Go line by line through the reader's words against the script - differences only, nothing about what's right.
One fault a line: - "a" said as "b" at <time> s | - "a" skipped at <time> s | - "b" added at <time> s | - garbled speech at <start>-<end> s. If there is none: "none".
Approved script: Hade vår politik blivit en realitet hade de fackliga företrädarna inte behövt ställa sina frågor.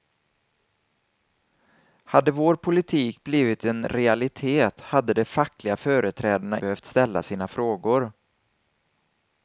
- "inte" skipped at 6.6 s